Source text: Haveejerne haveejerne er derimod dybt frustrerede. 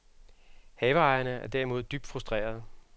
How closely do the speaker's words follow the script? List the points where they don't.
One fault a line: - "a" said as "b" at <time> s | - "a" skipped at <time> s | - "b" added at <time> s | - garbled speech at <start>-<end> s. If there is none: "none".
- "haveejerne" skipped at 1.3 s